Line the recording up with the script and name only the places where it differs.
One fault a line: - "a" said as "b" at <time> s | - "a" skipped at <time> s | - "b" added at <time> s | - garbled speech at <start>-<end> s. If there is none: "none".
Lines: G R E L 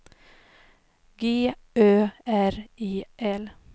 - "Ö" added at 1.8 s